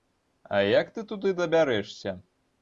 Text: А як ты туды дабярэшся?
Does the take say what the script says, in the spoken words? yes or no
yes